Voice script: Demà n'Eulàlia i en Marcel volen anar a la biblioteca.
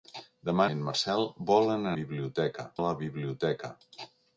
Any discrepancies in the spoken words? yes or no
yes